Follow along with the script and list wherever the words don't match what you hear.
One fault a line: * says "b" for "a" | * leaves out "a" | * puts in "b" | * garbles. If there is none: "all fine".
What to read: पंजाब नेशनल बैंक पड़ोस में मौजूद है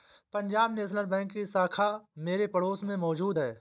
* puts in "की शाखा मेरे"